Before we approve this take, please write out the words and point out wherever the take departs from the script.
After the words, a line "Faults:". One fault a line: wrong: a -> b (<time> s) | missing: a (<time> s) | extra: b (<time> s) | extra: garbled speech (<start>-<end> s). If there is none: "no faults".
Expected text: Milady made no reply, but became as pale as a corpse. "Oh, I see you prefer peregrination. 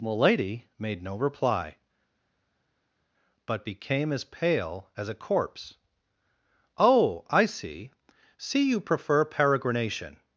Milady made no reply, but became as pale as a corpse. "Oh, I see see you prefer peregrination.
Faults:
extra: see (8.4 s)